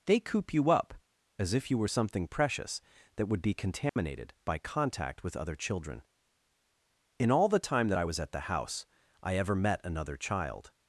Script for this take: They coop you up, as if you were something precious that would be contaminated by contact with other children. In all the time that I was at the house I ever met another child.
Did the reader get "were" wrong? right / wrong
right